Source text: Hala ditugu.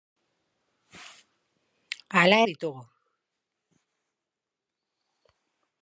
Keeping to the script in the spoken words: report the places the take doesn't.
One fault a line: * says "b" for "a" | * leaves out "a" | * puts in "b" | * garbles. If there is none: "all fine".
all fine